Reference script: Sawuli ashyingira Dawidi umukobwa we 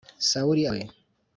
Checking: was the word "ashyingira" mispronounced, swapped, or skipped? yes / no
yes